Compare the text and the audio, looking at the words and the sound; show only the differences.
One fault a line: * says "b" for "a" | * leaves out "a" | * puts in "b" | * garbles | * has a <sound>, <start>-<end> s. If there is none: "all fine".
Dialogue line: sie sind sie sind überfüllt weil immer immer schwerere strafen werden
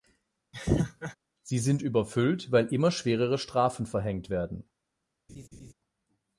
* has a laugh, 0.5-1.2 s
* leaves out "sie sind"
* leaves out "immer"
* puts in "verhängt"
* has a laugh, 5.3-5.7 s